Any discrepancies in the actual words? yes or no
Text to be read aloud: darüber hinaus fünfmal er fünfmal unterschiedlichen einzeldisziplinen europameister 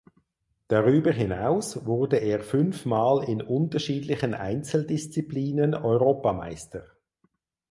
yes